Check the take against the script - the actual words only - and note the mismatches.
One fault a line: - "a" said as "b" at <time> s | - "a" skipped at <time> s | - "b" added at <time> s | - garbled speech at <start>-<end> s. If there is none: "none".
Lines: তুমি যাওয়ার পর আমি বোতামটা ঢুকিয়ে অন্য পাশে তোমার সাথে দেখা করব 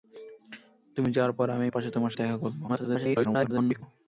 - "বোতামটা ঢুকিয়ে অন্য" skipped at 1.7 s
- "সাথে" skipped at 2.1 s
- garbled speech at 2.7-3.8 s